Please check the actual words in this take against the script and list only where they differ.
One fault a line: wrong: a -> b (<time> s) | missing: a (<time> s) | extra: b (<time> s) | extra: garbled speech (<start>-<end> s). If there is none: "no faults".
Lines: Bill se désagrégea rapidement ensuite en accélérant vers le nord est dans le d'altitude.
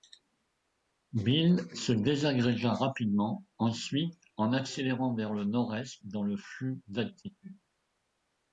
extra: flux (6.4 s)